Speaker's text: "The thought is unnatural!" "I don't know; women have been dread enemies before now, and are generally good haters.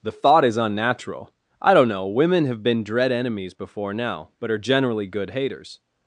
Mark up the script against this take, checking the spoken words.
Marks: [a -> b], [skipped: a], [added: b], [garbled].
"The thought is unnatural!" "I don't know; women have been dread enemies before now, [and -> but] are generally good haters.